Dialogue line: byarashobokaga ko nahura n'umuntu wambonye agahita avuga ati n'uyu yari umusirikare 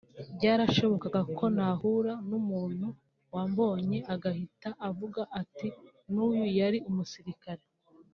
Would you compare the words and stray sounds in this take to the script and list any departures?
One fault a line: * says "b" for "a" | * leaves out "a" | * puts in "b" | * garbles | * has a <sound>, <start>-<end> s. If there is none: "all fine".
all fine